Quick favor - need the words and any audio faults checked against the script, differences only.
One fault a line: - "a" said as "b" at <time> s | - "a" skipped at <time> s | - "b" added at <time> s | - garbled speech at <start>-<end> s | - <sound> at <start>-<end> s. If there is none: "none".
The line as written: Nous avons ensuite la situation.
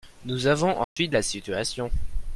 - dropout at 0.8-1.0 s